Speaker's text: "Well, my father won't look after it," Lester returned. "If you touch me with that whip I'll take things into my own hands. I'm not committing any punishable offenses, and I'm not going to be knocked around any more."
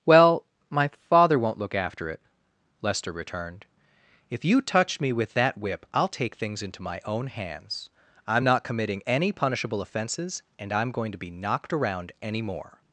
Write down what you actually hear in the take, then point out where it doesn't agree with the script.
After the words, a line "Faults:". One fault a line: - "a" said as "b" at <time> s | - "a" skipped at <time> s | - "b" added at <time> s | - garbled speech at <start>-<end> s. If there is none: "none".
"Well, my father won't look after it," Lester returned. "If you touch me with that whip I'll take things into my own hands. I'm not committing any punishable offenses, and I'm going to be knocked around any more."
Faults:
- "not" skipped at 10.9 s